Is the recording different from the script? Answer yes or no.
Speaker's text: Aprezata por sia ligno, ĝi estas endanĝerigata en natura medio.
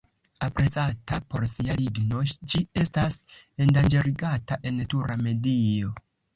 no